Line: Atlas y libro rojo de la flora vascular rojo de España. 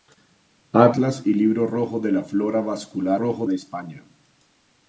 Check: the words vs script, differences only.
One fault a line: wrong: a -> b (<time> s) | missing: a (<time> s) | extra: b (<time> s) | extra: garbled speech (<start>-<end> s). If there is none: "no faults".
no faults